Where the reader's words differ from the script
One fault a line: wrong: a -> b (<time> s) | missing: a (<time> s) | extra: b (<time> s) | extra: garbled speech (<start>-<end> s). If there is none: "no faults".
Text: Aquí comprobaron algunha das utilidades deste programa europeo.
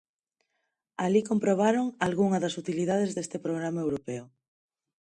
wrong: Aquí -> Alí (1.1 s)